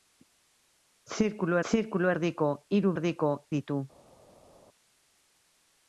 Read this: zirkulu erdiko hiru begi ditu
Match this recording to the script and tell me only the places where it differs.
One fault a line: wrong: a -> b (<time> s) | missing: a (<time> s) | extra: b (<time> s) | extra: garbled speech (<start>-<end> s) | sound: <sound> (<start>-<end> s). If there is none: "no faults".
extra: zirkulu (1.7 s)
wrong: begi -> erdiko (2.9 s)